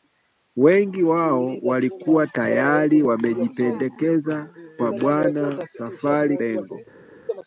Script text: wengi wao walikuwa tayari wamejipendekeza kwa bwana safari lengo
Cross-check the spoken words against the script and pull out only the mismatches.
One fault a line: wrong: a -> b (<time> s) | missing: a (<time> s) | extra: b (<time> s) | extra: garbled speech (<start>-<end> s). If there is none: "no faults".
no faults